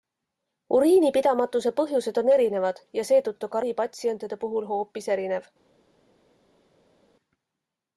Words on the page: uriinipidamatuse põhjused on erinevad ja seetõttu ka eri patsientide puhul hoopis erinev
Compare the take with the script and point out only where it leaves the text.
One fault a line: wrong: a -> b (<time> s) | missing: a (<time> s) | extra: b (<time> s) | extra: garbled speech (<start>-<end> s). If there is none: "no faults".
no faults